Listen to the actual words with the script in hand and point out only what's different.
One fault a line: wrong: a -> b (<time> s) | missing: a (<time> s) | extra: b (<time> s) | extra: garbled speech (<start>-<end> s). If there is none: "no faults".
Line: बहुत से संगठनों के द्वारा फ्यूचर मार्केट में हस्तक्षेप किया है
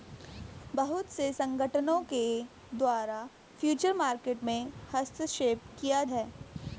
no faults